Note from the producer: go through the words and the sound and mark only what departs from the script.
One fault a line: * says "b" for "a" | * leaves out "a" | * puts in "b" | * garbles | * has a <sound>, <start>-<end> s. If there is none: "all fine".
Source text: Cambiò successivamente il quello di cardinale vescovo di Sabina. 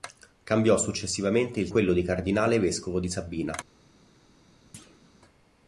* has a thud, 4.7-5.1 s